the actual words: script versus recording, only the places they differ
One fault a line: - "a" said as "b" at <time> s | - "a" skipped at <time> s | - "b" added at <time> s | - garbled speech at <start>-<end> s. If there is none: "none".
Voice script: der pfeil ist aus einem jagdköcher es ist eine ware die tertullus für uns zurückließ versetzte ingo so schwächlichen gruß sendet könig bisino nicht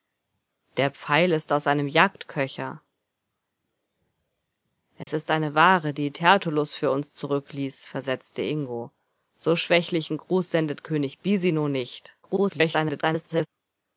- garbled speech at 12.2-13.5 s